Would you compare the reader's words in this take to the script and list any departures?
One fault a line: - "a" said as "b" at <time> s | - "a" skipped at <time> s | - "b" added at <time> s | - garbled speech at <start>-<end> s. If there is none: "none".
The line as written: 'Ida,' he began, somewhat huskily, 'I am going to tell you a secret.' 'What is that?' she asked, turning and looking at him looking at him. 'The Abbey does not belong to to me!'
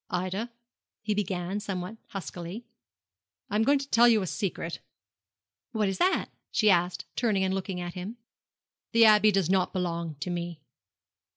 - "looking at him" skipped at 8.2 s
- "to" skipped at 10.3 s